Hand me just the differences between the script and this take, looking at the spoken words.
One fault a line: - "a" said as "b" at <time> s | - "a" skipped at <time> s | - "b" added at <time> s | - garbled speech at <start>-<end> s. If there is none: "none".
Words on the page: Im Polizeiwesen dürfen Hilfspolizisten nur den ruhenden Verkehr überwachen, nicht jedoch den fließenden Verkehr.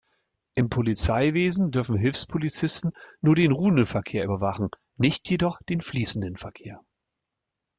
none